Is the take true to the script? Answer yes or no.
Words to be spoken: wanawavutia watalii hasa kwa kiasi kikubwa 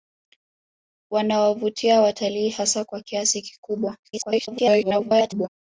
no